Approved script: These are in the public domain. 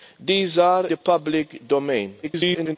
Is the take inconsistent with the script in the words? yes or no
yes